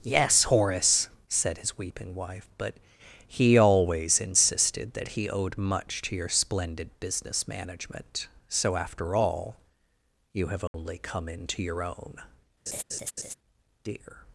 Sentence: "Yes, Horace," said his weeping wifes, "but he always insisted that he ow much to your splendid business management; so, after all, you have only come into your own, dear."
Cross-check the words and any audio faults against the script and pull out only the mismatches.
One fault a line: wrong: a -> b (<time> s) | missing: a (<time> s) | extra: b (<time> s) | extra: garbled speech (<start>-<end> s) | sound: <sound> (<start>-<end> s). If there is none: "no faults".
wrong: wifes -> wife (2.1 s)
wrong: ow -> owed (5.3 s)
sound: dropout (10.7-10.7 s)
sound: laugh (12.7-13.3 s)